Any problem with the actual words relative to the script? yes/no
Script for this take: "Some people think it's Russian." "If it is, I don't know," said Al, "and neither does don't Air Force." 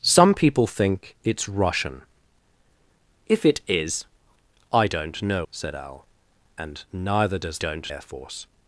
no